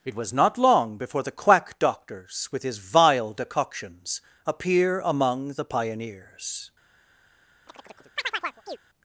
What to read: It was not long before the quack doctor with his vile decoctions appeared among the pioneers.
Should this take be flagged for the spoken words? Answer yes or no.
yes